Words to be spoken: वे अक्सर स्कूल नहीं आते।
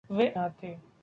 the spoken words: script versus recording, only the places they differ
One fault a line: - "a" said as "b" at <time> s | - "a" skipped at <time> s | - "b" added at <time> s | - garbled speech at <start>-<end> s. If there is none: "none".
- "अक्सर स्कूल नहीं" skipped at 0.3 s